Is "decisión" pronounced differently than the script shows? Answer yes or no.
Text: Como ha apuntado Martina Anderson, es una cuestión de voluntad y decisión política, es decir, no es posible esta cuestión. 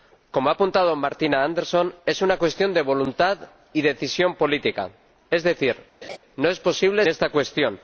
no